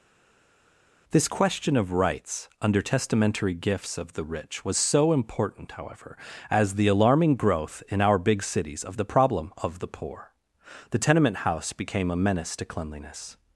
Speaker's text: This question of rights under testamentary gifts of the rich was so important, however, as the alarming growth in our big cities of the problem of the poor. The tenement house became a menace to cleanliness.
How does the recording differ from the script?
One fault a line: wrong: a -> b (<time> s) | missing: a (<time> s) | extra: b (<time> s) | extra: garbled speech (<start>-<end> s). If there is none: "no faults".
no faults